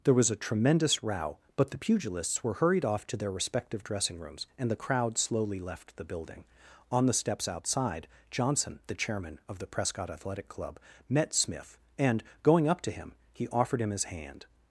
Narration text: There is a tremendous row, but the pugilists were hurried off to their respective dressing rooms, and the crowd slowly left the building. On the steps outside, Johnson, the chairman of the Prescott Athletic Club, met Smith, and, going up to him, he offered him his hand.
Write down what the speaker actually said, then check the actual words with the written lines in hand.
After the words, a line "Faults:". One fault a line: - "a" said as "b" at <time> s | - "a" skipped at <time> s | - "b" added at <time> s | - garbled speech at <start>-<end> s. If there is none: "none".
There was a tremendous row, but the pugilists were hurried off to their respective dressing rooms, and the crowd slowly left the building. On the steps outside, Johnson, the chairman of the Prescott Athletic Club, met Smith, and, going up to him, he offered him his hand.
Faults:
- "is" said as "was" at 0.1 s